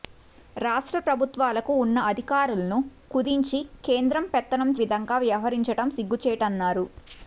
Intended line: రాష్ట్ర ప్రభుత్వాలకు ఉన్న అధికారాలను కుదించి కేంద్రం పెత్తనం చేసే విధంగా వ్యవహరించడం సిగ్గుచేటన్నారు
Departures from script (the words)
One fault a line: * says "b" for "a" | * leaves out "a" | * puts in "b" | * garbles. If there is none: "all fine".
* leaves out "చేసే"